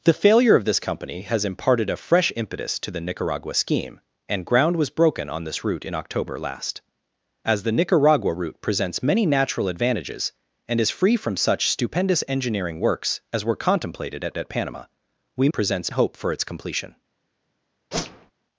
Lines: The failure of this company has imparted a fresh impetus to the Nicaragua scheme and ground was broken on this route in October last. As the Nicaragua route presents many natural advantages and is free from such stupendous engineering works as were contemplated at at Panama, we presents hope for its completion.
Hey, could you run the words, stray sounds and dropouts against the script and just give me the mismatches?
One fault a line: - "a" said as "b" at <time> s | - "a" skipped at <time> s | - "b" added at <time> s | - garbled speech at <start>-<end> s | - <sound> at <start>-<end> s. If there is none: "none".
- whoosh at 17.9-18.3 s